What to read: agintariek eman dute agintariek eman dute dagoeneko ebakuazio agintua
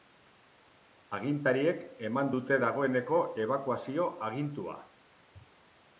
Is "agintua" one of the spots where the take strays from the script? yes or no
no